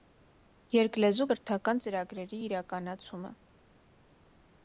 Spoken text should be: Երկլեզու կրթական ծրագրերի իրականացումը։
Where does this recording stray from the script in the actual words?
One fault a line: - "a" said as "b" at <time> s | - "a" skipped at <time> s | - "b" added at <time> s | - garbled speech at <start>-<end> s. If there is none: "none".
none